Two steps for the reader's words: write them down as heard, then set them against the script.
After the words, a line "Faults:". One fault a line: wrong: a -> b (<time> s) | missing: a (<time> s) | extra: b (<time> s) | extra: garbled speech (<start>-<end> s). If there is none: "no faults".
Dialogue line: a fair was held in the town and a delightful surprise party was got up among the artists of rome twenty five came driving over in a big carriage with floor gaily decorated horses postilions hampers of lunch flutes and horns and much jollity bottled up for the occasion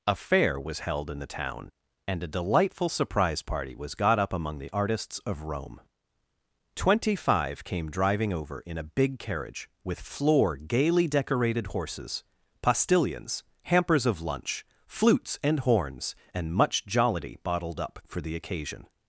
a fair was held in the town and a delightful surprise party was got up among the artists of rome twenty five came driving over in a big carriage with floor gaily decorated horses postilions hampers of lunch flutes and horns and much jollity bottled up for the occasion
Faults:
no faults